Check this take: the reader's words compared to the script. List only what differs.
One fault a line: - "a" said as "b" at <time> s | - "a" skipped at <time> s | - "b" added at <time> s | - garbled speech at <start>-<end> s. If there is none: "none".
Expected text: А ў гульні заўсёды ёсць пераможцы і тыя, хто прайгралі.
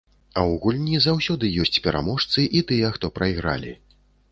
none